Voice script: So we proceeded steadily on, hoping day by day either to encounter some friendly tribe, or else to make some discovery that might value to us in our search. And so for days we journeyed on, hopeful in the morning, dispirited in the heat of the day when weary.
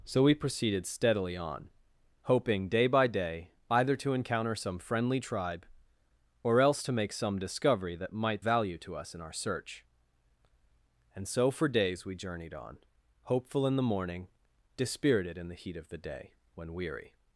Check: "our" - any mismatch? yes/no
no